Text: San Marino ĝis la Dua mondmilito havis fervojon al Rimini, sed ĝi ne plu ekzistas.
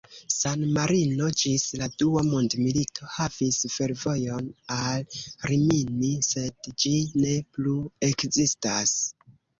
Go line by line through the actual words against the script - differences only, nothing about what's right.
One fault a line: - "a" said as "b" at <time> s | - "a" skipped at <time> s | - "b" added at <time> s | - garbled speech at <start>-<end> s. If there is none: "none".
none